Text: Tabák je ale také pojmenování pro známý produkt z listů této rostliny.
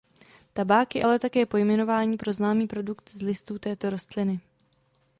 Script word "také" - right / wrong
right